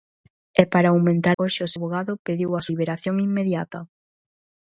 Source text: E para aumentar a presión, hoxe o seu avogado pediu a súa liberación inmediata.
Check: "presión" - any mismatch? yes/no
yes